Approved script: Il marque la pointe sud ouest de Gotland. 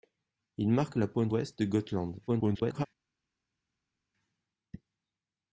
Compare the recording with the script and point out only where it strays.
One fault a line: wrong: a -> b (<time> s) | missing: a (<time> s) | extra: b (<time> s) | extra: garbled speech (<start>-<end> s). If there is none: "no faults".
missing: sud (1.3 s)
extra: garbled speech (2.3-2.9 s)